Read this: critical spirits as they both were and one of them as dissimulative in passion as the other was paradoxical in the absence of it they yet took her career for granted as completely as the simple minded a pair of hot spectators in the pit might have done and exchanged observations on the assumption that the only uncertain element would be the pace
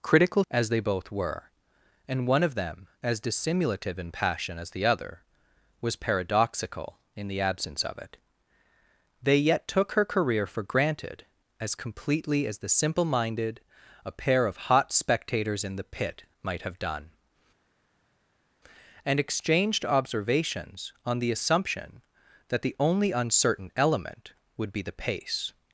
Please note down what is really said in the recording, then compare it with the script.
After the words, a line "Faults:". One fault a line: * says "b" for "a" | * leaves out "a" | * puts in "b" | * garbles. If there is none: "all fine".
critical as they both were and one of them as dissimulative in passion as the other was paradoxical in the absence of it they yet took her career for granted as completely as the simple minded a pair of hot spectators in the pit might have done and exchanged observations on the assumption that the only uncertain element would be the pace
Faults:
* leaves out "spirits"